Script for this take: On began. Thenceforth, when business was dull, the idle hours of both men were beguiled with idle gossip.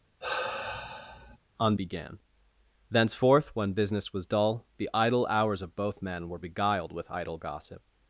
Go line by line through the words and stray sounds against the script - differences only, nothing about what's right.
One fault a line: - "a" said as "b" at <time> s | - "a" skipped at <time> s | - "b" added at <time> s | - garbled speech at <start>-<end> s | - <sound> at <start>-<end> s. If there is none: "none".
- sigh at 0.2-1.4 s